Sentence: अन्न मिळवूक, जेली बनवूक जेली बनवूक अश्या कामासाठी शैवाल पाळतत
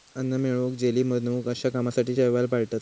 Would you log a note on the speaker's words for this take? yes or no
yes